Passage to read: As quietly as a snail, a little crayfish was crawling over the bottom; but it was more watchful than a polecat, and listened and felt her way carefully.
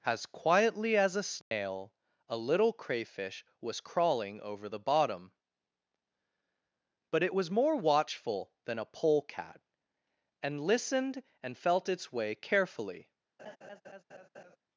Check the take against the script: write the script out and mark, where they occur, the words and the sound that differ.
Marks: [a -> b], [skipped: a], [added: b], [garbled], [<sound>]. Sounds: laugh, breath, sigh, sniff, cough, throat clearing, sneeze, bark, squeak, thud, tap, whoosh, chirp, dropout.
As quietly as a snail, [dropout] a little crayfish was crawling over the bottom; but it was more watchful than a polecat, and listened and felt [her -> its] way carefully. [laugh]